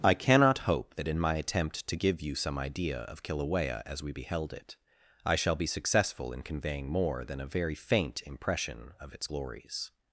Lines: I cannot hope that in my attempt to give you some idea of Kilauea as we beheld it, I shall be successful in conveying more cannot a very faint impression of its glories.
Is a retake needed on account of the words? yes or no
yes